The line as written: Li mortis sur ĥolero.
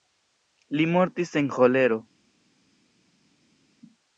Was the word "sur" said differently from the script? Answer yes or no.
yes